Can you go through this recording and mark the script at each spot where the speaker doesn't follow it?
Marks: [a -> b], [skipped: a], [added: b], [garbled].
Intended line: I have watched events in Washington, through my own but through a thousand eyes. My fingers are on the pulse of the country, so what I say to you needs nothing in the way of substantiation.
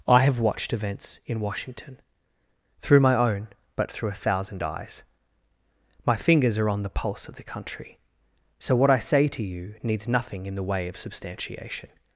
I have watched events in Washington, through my own but through a thousand eyes. My fingers are on the pulse of the country, so what I say to you needs nothing in the way of substantiation.